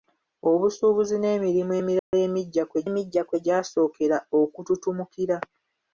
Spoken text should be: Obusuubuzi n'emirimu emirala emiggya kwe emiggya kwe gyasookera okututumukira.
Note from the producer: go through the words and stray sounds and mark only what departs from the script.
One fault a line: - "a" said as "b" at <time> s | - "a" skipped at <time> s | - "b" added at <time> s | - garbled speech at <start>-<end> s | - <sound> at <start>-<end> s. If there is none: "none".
- dropout at 2.0-2.1 s